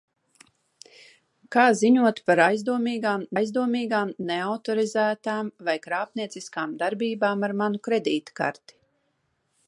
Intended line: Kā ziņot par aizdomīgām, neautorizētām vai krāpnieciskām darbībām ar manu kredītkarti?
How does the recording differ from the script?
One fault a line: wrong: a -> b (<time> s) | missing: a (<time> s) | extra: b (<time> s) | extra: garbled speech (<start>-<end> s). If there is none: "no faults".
extra: aizdomīgām (3.4 s)